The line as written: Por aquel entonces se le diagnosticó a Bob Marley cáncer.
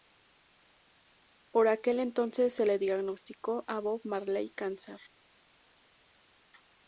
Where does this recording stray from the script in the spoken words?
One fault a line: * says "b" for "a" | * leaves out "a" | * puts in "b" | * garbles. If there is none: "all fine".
all fine